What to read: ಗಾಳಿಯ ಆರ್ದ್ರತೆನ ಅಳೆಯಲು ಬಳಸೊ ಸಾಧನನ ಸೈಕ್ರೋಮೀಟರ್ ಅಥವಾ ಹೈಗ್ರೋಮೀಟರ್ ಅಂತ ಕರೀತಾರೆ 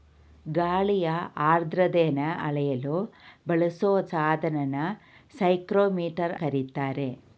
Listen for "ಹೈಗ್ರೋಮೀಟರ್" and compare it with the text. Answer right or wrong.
wrong